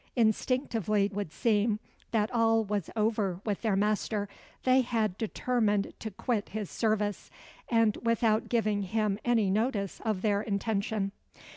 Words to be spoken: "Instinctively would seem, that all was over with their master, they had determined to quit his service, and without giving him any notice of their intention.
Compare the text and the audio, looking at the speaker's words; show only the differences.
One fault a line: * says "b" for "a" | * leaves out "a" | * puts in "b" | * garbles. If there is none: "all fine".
all fine